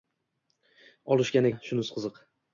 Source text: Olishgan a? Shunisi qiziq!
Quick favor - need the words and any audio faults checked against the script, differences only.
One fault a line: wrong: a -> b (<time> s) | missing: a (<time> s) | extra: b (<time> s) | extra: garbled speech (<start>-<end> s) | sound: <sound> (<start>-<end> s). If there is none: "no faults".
no faults